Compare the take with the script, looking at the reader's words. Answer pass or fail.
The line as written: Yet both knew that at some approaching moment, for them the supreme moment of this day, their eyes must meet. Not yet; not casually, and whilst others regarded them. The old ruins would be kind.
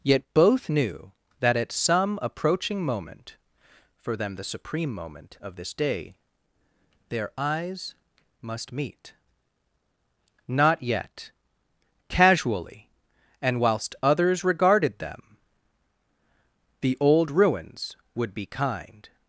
fail